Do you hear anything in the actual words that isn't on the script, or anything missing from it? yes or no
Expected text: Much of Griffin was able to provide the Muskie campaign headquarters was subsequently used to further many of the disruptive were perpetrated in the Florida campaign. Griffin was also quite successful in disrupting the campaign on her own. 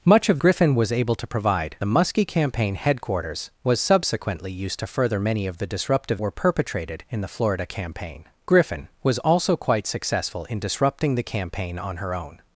no